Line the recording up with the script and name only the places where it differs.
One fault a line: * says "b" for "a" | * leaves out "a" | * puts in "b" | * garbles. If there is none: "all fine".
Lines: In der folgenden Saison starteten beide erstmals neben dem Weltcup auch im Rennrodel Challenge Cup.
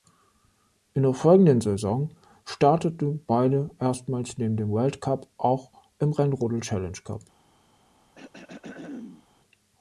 all fine